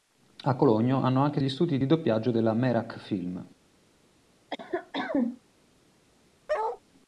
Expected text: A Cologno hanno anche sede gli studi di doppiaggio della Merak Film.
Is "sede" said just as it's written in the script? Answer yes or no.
no